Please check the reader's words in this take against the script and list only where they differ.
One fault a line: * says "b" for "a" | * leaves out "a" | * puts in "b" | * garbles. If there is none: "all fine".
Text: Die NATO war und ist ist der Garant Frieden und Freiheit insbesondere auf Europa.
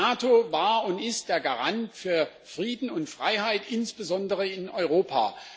* leaves out "ist"
* puts in "für"
* says "in" for "auf"